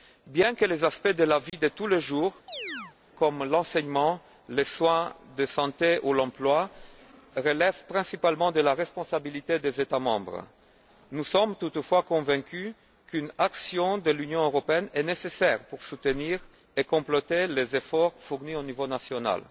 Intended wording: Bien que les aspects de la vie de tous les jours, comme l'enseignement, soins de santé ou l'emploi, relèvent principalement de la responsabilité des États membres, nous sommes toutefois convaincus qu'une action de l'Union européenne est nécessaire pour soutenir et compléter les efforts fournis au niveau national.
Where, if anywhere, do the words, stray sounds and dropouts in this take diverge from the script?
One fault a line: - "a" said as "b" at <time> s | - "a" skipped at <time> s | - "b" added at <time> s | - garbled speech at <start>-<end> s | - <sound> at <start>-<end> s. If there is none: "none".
- dropout at 1.5-1.5 s
- chirp at 2.5-3.0 s
- "les" added at 4.5 s